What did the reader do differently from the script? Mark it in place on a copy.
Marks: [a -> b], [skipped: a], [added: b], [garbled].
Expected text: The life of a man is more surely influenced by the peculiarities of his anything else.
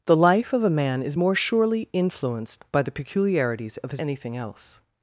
The life of a man is more surely influenced by the peculiarities of his anything else.